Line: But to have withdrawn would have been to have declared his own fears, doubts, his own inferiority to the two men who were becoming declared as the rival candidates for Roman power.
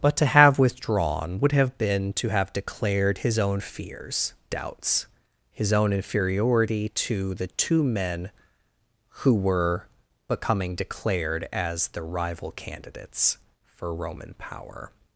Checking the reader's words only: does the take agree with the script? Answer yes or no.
yes